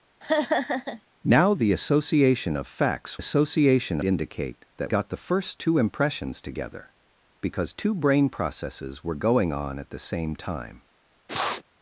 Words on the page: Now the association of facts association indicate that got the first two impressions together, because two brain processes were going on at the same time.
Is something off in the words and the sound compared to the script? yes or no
yes